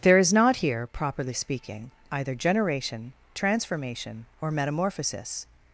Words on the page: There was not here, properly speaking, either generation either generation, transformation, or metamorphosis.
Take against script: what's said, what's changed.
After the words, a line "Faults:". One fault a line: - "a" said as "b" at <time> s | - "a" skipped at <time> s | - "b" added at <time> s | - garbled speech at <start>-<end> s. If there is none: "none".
There is not here, properly speaking, either generation, transformation, or metamorphosis.
Faults:
- "was" said as "is" at 0.2 s
- "either generation" skipped at 3.1 s